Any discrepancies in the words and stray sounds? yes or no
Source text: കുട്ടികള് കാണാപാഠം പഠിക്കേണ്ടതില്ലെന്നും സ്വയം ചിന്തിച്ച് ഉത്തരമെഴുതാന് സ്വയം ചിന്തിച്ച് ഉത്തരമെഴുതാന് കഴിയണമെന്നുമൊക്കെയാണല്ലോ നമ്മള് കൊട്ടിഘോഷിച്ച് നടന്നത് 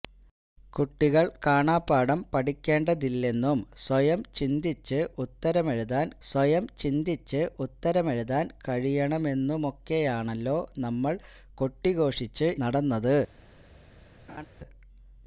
yes